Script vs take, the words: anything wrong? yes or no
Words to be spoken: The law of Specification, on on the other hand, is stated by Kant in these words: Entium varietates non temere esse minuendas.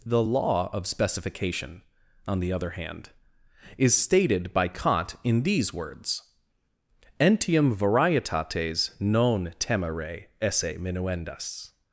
yes